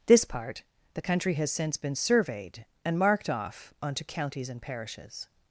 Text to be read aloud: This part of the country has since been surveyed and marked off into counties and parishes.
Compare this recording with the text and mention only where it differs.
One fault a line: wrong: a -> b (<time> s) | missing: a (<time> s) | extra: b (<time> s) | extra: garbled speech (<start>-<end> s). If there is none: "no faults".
missing: of (0.6 s)
wrong: into -> onto (3.8 s)